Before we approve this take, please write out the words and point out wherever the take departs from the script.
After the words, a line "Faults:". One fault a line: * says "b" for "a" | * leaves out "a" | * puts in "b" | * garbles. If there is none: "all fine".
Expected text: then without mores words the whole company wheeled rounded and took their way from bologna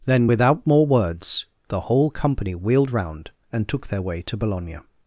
then without more words the whole company wheeled round and took their way to bologna
Faults:
* says "more" for "mores"
* says "round" for "rounded"
* says "to" for "from"